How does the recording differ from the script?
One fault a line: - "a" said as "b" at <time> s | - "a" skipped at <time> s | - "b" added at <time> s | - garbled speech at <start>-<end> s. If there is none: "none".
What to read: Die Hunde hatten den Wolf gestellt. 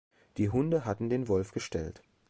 none